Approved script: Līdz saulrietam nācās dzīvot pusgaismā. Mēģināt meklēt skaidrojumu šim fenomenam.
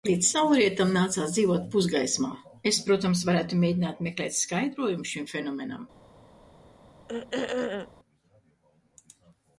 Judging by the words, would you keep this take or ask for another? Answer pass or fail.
fail